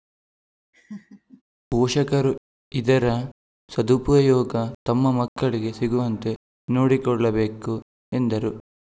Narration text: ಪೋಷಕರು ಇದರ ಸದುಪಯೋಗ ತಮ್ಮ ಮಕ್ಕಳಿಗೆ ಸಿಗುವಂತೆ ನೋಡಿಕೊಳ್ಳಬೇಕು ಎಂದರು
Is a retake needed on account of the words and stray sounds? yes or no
yes